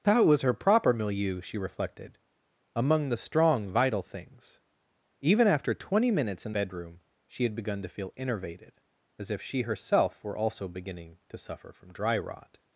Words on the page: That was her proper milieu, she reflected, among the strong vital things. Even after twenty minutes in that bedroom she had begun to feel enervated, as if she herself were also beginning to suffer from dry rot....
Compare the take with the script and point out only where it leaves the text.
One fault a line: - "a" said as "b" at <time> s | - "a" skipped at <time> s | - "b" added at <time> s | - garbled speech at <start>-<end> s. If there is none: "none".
- "that" skipped at 6.5 s